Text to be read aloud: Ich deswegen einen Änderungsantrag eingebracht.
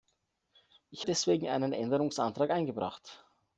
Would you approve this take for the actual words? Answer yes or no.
yes